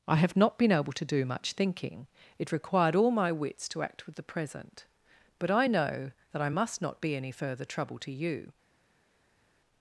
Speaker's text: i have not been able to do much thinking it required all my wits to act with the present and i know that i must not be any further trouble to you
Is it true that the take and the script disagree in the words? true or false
true